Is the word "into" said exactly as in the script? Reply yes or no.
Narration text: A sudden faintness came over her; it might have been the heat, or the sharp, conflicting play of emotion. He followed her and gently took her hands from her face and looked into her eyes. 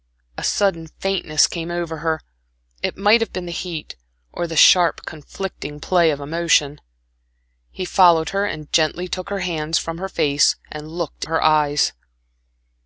no